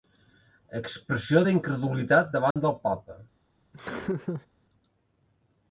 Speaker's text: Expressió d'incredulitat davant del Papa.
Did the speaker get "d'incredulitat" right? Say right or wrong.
right